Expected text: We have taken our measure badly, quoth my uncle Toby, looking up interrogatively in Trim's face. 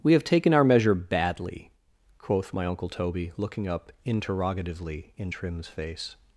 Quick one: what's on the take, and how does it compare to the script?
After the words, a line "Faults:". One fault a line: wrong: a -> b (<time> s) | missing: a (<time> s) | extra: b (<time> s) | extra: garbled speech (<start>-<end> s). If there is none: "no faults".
We have taken our measure badly, quoth my uncle Toby, looking up interrogatively in Trim's face.
Faults:
no faults